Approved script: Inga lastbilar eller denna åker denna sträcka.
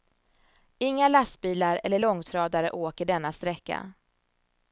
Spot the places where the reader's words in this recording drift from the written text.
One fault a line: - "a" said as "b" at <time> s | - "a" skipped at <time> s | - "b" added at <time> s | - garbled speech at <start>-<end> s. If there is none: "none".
- "denna" said as "långtradare" at 2.0 s